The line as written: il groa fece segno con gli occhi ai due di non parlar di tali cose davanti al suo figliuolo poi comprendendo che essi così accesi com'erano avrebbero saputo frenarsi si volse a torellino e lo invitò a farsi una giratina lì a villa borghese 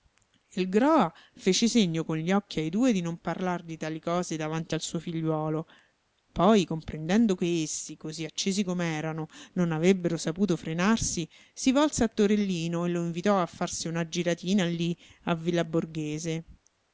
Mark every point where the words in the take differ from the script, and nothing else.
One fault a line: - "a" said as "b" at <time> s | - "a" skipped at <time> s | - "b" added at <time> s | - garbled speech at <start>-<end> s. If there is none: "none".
- "non" added at 9.5 s